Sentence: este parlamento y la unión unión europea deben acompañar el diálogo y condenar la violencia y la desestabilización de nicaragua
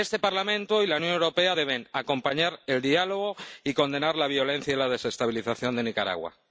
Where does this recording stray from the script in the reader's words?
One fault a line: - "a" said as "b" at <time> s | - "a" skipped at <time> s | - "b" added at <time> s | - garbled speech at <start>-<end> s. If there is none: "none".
- "unión" skipped at 1.1 s